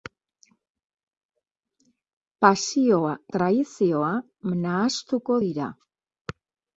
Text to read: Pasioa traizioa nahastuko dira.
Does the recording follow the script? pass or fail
pass